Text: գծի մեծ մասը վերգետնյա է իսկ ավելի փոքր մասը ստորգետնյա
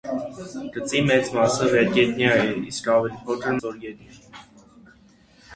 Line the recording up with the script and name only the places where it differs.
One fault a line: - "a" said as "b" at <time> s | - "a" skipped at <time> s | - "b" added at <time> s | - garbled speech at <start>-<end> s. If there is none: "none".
- "մասը" skipped at 3.6 s